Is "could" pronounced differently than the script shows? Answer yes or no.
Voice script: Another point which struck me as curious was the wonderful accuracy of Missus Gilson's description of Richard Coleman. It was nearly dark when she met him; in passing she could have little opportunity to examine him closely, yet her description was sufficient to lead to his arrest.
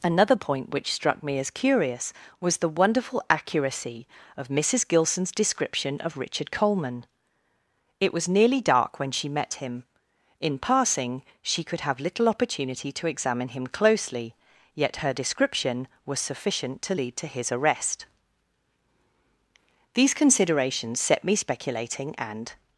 no